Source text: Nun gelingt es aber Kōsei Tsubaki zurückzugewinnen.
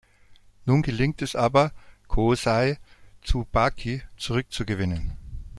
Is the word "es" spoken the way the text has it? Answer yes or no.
yes